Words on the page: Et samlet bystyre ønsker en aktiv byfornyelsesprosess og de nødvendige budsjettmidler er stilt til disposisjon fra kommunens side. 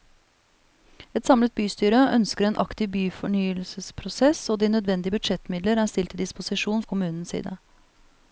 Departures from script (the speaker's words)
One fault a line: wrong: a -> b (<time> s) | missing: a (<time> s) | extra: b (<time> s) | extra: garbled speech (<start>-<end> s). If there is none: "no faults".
missing: fra (6.8 s)